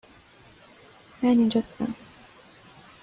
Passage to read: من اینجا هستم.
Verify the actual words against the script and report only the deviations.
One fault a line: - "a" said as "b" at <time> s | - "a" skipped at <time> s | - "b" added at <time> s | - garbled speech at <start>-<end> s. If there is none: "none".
none